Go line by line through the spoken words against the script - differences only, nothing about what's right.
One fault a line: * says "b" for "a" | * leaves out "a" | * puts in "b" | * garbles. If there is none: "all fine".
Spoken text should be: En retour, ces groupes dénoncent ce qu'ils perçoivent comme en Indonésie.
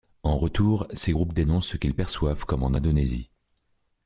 all fine